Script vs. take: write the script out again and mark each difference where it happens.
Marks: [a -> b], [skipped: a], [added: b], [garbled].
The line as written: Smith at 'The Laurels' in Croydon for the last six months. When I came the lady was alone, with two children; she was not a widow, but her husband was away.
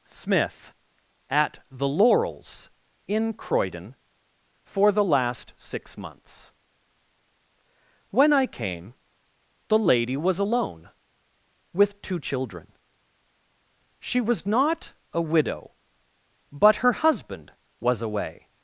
Smith at 'The Laurels' in Croydon for the last six months. When I came the lady was alone, with two children; she was not a widow, but her husband was away.